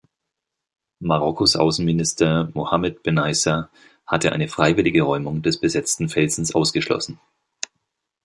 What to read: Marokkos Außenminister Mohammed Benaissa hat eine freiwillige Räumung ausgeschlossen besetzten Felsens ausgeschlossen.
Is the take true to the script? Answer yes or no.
no